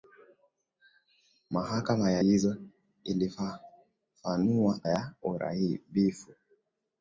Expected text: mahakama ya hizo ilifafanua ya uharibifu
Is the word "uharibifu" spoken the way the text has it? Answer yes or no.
yes